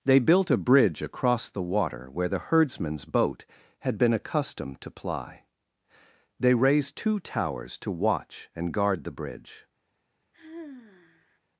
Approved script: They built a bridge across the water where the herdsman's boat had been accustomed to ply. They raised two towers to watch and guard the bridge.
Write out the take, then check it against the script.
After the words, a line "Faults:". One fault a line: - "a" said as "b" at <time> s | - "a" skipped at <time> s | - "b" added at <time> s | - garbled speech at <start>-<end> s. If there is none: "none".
They built a bridge across the water where the herdsman's boat had been accustomed to ply. They raised two towers to watch and guard the bridge.
Faults:
none